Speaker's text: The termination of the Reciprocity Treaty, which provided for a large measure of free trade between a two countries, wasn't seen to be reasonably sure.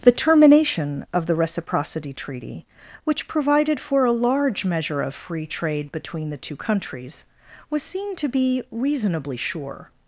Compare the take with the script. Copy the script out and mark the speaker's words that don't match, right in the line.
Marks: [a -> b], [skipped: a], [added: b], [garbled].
The termination of the Reciprocity Treaty, which provided for a large measure of free trade between [a -> the] two countries, [wasn't -> was] seen to be reasonably sure.